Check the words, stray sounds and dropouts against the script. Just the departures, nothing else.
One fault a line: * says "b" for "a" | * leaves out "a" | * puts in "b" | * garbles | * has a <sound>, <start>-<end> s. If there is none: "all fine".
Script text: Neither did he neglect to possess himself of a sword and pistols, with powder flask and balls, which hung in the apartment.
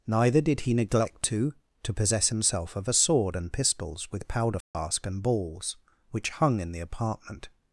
* puts in "to"
* has a dropout, 4.6-4.7 s